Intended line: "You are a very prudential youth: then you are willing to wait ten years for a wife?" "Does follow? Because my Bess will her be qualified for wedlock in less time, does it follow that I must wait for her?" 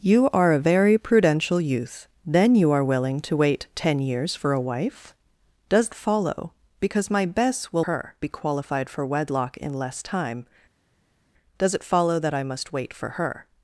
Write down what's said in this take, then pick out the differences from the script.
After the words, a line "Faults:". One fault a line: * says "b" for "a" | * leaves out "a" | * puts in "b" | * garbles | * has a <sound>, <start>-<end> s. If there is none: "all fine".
"You are a very prudential youth: then you are willing to wait ten years for a wife?" "Does follow? Because my Bess will her be qualified for wedlock in less time, does it follow that I must wait for her?"
Faults:
all fine